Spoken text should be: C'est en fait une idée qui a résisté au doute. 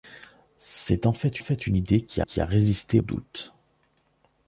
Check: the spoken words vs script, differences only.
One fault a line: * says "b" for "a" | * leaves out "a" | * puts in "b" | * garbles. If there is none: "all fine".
* puts in "fait"
* puts in "qui"
* leaves out "au"